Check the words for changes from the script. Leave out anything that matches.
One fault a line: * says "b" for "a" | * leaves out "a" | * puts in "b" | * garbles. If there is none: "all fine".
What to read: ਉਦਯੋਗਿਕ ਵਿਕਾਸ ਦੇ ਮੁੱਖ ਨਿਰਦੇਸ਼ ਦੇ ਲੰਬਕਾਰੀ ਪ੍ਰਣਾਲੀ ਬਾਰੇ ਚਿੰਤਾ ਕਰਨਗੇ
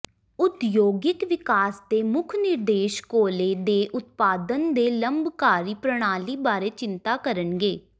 * puts in "ਕੋਲੇ ਦੇ ਉਤਪਾਦਨ"